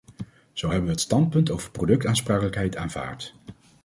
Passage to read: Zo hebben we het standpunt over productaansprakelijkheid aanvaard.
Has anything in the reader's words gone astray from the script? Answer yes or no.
no